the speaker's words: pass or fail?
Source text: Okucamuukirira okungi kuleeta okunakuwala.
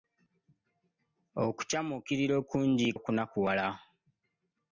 fail